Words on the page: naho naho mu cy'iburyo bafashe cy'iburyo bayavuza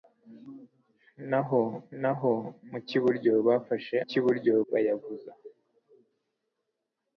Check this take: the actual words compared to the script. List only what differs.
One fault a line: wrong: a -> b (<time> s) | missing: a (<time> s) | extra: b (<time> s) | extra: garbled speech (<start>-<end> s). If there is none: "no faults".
no faults